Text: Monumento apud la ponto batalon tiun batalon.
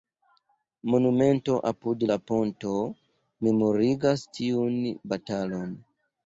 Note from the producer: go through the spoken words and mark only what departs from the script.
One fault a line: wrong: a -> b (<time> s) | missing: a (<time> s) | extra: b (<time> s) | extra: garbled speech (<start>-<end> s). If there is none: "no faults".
wrong: batalon -> memorigas (3.5 s)